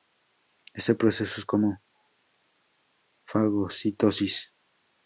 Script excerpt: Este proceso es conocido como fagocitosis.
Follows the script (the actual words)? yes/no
no